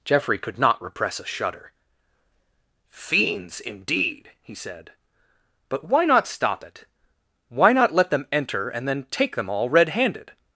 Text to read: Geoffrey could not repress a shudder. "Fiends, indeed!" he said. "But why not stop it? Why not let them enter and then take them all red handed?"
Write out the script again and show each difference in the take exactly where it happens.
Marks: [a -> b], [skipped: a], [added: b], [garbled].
Geoffrey could not repress a shudder. "Fiends, indeed!" he said. "But why not stop it? Why not let them enter and then take them all red handed?"